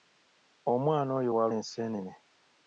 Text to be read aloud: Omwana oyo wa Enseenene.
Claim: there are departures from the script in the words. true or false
false